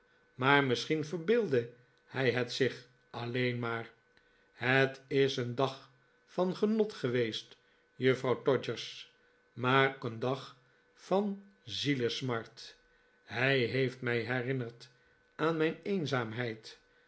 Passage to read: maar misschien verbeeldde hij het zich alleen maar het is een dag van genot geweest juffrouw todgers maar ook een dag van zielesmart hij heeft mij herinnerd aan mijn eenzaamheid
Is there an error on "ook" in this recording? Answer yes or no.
yes